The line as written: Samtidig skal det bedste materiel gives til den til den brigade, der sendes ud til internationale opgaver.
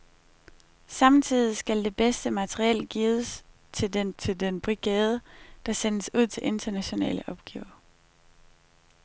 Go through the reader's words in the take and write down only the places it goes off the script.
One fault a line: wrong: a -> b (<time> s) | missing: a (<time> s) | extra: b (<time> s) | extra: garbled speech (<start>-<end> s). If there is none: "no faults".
no faults